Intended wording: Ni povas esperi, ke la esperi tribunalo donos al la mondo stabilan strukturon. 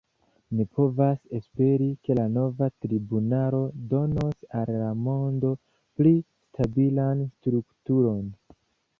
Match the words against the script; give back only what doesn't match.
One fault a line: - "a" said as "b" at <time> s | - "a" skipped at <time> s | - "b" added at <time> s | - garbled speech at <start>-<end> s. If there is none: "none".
- "esperi" said as "nova" at 2.4 s
- "pli" added at 6.0 s